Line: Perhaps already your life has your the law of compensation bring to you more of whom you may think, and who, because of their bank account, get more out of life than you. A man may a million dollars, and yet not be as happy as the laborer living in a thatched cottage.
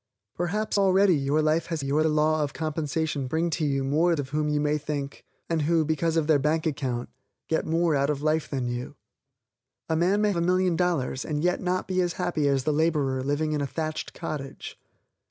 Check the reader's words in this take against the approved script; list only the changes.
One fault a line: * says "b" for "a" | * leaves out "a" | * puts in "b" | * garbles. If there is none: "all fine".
all fine